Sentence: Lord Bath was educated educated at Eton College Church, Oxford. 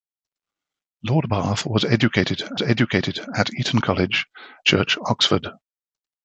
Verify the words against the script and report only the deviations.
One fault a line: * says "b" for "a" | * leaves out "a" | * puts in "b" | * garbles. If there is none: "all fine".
all fine